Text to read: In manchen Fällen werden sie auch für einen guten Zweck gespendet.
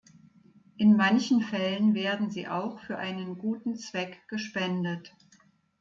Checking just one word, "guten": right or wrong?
right